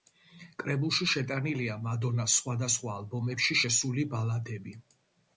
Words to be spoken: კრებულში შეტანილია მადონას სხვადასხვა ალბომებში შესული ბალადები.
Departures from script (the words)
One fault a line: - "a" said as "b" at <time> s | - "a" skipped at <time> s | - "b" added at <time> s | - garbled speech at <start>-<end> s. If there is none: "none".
none